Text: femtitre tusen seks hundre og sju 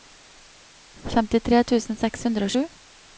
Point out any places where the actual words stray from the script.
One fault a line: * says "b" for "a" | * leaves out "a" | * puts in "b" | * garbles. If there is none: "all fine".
all fine